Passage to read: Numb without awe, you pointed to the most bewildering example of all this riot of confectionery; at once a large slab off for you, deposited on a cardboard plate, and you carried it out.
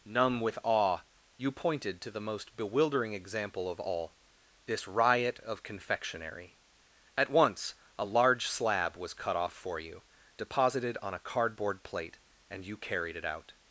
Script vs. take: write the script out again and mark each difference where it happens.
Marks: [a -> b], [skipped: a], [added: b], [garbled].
Numb [without -> with] awe, you pointed to the most bewildering example of all this riot of confectionery; at once a large slab [added: was cut] off for you, deposited on a cardboard plate, and you carried it out.